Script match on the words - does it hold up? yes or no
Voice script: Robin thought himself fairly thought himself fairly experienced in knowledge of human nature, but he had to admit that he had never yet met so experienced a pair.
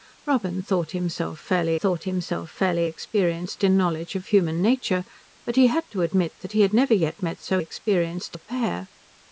yes